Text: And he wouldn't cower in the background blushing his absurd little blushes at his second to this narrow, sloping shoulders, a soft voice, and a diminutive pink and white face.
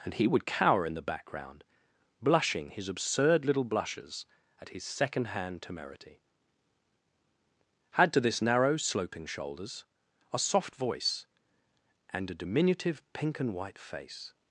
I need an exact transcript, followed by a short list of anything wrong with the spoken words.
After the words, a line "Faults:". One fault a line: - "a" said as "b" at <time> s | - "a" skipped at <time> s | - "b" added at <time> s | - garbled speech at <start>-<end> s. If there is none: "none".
And he would cower in the background blushing his absurd little blushes at his second hand temerity. Add to this narrow, sloping shoulders, a soft voice, and a diminutive pink and white face.
Faults:
- "wouldn't" said as "would" at 0.3 s
- "hand temerity Add" added at 5.2 s